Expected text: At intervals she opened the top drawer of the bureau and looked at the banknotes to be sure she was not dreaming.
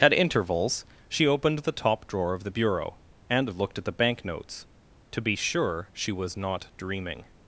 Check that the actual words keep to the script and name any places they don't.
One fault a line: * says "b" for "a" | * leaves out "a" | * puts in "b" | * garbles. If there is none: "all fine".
all fine